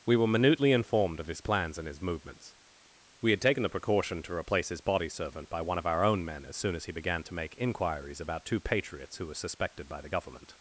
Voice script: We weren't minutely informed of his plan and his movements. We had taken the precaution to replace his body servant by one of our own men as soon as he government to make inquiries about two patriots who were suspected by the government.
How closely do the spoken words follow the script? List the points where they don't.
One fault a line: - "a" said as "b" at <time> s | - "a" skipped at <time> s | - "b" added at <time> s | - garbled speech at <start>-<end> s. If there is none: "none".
- "weren't" said as "were" at 0.1 s
- "plan" said as "plans" at 1.4 s
- "government" said as "began" at 6.9 s